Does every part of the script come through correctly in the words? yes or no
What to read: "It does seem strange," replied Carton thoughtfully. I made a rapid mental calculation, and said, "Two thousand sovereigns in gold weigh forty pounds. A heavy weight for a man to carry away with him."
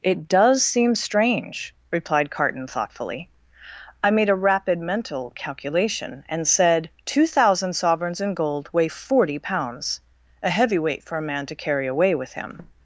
yes